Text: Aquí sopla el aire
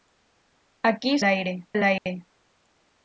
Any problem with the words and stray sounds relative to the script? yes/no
yes